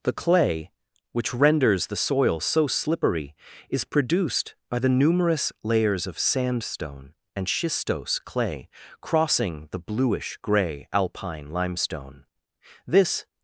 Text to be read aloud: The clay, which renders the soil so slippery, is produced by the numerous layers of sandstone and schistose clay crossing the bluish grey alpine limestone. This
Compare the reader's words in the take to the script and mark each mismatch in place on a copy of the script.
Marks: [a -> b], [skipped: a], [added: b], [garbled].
The clay, which renders the soil so slippery, is produced by the numerous layers of sandstone and schistose clay crossing the bluish grey alpine limestone. This